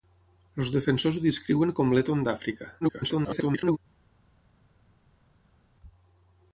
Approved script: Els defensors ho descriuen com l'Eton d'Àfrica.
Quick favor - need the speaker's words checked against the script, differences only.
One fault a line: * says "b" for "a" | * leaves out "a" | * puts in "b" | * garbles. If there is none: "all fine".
* garbles